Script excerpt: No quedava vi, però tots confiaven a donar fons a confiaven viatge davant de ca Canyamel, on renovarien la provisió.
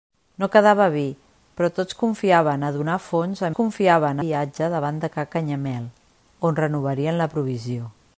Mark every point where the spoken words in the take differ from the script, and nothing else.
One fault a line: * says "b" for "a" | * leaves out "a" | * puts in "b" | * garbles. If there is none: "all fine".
all fine